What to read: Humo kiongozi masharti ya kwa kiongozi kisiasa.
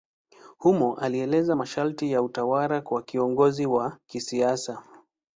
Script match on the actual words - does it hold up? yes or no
no